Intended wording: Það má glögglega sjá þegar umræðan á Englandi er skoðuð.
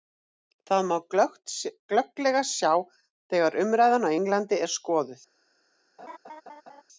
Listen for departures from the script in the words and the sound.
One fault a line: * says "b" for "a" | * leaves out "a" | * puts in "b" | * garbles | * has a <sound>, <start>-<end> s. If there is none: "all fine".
* has a laugh, 6.0-6.8 s